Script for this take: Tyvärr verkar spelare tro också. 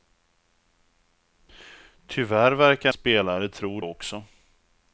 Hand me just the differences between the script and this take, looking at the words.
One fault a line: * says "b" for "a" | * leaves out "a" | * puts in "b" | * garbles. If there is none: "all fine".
all fine